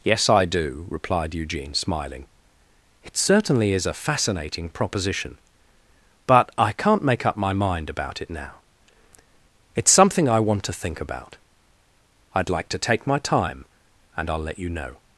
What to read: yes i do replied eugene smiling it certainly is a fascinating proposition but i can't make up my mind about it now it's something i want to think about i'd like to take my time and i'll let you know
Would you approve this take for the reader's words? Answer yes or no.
yes